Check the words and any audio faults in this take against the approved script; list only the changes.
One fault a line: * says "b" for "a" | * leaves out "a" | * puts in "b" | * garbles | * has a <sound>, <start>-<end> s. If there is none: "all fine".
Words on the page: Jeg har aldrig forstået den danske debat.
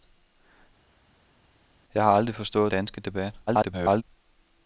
* leaves out "den"
* garbles